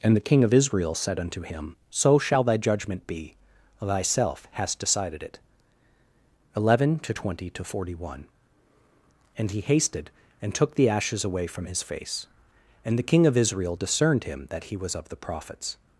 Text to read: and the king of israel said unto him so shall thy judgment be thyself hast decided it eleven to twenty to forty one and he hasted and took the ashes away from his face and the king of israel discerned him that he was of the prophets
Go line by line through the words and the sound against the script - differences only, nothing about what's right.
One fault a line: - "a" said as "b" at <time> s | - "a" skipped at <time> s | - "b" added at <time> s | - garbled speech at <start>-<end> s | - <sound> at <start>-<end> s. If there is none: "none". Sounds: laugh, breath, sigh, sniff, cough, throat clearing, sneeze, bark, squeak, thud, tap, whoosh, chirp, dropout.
none